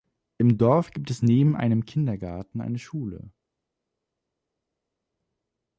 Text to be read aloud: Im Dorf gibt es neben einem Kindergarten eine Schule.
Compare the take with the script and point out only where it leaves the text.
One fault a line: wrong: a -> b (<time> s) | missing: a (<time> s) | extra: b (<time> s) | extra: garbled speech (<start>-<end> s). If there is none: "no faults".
no faults